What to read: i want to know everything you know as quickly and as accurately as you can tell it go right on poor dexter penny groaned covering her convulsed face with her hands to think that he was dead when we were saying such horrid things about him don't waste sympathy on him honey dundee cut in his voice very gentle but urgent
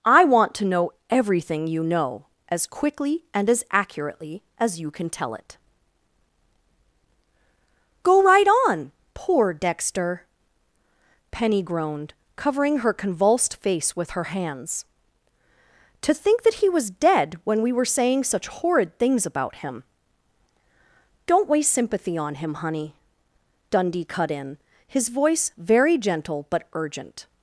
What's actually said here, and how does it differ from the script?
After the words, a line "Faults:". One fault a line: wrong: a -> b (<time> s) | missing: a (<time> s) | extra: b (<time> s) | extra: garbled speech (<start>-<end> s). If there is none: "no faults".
i want to know everything you know as quickly and as accurately as you can tell it go right on poor dexter penny groaned covering her convulsed face with her hands to think that he was dead when we were saying such horrid things about him don't waste sympathy on him honey dundee cut in his voice very gentle but urgent
Faults:
no faults